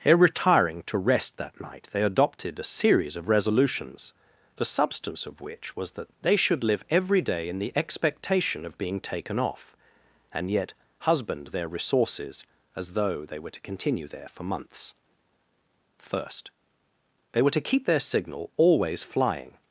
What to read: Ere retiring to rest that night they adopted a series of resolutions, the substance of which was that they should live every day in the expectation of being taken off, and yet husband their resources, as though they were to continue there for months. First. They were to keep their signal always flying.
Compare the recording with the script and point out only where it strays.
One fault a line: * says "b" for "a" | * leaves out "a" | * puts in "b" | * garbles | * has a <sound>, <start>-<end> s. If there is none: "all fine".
all fine